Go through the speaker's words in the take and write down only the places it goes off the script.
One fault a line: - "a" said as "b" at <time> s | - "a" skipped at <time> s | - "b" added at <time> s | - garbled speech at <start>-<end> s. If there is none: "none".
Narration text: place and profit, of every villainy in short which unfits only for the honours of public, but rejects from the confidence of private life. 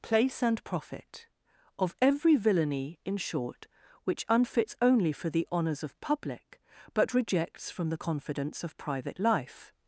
none